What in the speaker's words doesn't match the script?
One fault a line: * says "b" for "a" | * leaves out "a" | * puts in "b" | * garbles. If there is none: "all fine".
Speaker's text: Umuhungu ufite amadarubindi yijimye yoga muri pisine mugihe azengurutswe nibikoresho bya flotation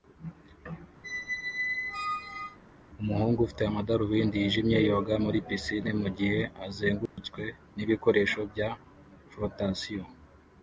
all fine